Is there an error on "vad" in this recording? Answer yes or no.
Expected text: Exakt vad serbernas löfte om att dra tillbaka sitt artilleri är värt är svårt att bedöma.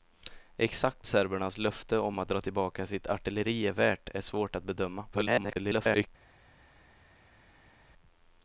yes